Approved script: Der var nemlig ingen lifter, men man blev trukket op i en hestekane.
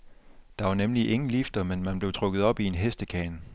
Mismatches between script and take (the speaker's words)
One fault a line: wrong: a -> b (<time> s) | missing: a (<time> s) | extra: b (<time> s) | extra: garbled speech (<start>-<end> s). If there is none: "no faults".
no faults